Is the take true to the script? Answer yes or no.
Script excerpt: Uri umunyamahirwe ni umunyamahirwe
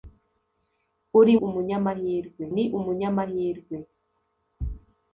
yes